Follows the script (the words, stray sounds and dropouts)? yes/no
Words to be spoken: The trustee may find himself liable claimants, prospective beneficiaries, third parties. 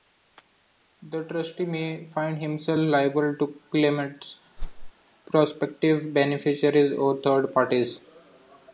no